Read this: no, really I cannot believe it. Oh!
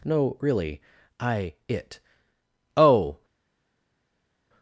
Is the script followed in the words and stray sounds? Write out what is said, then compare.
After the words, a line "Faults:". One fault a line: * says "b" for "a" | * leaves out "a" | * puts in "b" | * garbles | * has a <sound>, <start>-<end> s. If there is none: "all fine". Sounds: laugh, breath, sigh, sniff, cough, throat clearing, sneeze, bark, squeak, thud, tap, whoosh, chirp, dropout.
no, really I it. Oh!
Faults:
* leaves out "cannot believe"